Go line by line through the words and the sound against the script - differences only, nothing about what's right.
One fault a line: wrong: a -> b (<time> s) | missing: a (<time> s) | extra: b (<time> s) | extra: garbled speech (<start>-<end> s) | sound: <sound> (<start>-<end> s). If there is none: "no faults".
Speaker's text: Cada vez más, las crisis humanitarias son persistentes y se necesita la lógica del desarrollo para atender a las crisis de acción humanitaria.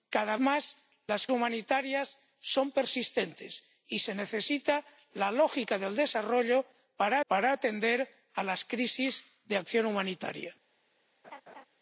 missing: vez (0.3 s)
missing: crisis (1.3 s)
extra: para (7.3 s)
sound: laugh (11.2-11.7 s)